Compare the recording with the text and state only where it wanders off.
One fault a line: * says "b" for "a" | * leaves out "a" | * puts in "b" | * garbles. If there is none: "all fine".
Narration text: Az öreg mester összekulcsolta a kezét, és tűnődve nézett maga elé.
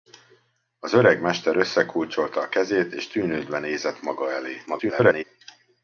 * garbles